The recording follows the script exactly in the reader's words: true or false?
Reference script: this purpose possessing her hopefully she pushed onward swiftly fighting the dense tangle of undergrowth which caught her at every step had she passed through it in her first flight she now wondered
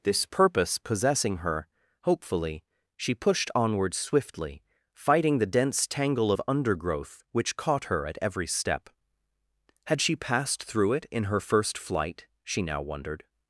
true